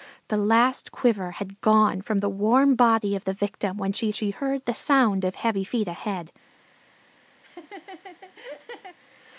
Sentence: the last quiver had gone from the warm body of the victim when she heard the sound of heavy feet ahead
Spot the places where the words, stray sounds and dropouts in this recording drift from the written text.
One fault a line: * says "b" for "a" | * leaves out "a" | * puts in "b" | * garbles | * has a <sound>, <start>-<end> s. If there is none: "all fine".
* puts in "she"
* has a laugh, 7.4-9.0 s